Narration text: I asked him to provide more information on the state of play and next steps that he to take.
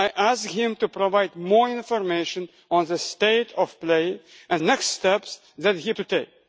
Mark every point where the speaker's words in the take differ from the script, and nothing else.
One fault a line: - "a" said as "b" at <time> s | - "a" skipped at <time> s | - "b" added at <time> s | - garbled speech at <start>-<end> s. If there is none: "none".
none